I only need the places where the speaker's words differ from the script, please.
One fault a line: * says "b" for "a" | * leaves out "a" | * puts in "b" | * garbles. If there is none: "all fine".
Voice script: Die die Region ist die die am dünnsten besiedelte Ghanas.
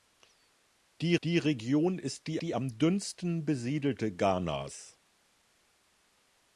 all fine